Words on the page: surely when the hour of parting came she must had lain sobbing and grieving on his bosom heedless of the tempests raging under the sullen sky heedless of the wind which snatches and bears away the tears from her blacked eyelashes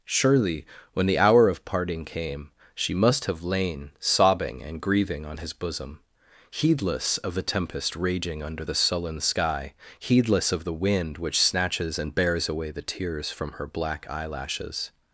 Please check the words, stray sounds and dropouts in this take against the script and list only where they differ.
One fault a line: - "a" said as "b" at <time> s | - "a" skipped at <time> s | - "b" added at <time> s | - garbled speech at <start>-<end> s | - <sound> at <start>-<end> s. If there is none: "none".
- "had" said as "have" at 3.2 s
- "tempests" said as "tempest" at 7.4 s
- "blacked" said as "black" at 13.7 s